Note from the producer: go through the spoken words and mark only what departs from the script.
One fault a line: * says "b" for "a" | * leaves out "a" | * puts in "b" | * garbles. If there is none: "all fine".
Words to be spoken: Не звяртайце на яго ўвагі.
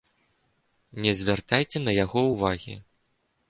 all fine